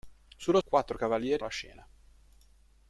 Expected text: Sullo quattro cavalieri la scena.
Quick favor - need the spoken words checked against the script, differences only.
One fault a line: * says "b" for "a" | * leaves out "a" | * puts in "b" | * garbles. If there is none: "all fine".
all fine